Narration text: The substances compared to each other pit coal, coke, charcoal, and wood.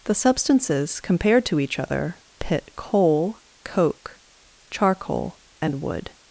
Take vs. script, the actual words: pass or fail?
pass